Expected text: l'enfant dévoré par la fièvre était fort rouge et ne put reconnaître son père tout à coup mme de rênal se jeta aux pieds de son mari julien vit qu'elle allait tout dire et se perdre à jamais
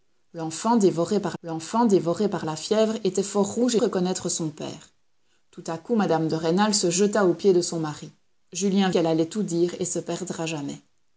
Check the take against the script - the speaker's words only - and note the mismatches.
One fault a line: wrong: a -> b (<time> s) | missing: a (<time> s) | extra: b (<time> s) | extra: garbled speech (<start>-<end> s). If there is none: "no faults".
extra: l'enfant dévoré par (1.4 s)
missing: ne put (3.8 s)
missing: vit (8.9 s)